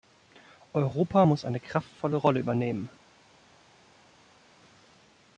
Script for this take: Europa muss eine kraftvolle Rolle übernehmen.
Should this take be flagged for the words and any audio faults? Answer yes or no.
no